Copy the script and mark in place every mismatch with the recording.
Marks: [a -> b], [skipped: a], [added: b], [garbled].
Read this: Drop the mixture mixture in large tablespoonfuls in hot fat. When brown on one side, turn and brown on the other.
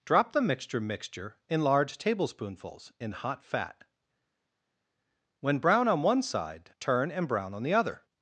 Drop the mixture mixture in large tablespoonfuls in hot fat. When brown on one side, turn and brown on the other.